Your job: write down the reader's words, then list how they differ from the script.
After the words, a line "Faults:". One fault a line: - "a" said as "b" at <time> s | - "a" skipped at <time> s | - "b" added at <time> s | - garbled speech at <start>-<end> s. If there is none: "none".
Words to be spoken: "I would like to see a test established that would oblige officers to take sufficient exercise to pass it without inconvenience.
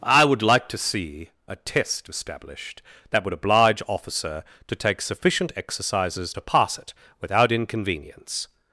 "I would like to see a test established that would oblige officer to take sufficient exercises to pass it without inconvenience.
Faults:
- "officers" said as "officer" at 3.9 s
- "exercise" said as "exercises" at 5.5 s